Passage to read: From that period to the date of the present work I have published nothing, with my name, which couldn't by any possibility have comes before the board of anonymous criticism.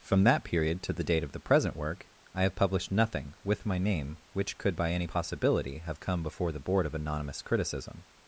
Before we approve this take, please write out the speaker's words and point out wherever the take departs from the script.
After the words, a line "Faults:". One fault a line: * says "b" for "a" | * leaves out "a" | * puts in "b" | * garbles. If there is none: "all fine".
From that period to the date of the present work I have published nothing, with my name, which could by any possibility have come before the board of anonymous criticism.
Faults:
* says "could" for "couldn't"
* says "come" for "comes"